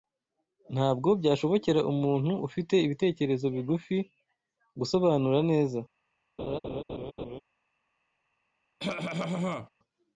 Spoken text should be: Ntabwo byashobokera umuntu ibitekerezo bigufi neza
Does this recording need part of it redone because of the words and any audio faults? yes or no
yes